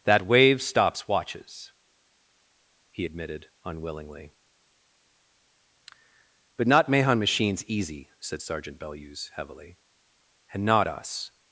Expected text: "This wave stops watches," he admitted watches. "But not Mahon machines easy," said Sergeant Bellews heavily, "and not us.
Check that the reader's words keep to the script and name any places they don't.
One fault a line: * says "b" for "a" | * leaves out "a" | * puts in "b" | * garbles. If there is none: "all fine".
* says "That" for "This"
* says "unwillingly" for "watches"